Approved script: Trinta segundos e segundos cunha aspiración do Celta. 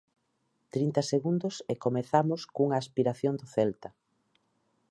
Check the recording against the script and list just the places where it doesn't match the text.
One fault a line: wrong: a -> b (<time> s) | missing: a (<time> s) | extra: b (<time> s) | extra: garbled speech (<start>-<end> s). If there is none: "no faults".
wrong: segundos -> comezamos (1.8 s)